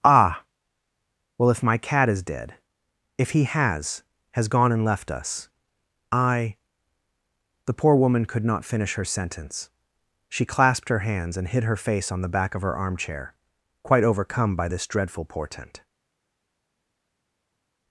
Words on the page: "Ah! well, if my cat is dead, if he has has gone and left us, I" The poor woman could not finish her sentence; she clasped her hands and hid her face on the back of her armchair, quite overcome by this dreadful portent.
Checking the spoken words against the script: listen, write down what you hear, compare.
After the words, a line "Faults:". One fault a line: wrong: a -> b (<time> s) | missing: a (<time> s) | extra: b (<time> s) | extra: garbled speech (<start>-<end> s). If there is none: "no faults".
"Ah! well, if my cat is dead, if he has has gone and left us, I" The poor woman could not finish her sentence; she clasped her hands and hid her face on the back of her armchair, quite overcome by this dreadful portent.
Faults:
no faults